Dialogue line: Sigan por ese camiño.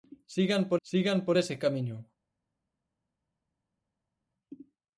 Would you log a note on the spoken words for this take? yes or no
yes